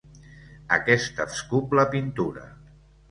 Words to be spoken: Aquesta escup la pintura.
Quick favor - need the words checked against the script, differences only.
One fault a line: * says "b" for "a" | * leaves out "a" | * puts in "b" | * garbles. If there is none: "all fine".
all fine